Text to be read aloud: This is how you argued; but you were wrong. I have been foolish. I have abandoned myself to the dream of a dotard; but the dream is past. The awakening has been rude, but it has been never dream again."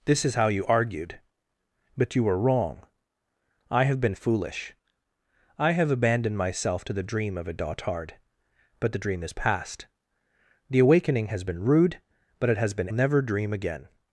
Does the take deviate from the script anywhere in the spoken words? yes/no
no